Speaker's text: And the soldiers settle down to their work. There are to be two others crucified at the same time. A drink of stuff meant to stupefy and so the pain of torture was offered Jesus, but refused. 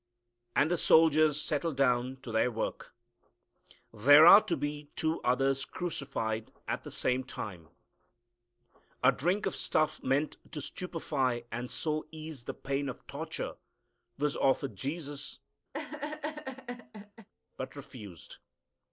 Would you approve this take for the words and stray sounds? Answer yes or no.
no